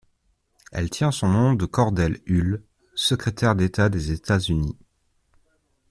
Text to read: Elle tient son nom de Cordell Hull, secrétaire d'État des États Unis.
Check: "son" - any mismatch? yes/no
no